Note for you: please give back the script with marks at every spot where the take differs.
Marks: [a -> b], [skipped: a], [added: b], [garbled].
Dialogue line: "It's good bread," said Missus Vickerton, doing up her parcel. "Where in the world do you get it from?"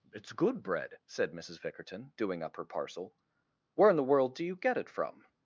"It's good bread," said Missus Vickerton, doing up her parcel. "Where in the world do you get it from?"